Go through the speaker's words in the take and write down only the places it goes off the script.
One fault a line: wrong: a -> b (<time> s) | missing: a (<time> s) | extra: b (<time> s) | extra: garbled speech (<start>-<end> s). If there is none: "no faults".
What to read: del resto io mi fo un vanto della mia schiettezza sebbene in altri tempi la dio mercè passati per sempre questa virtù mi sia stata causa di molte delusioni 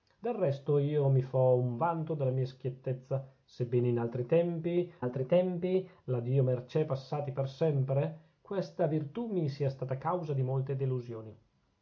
extra: altri tempi (5.0 s)